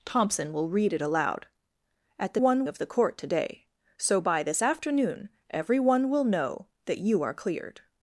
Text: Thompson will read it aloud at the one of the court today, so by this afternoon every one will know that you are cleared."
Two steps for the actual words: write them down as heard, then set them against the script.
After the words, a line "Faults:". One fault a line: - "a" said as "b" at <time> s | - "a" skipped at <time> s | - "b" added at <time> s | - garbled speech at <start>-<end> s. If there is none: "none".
Thompson will read it aloud at the one of the court today, so by this afternoon every one will know that you are cleared."
Faults:
none